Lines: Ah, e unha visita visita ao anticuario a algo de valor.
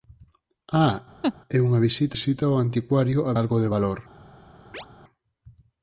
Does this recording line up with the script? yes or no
yes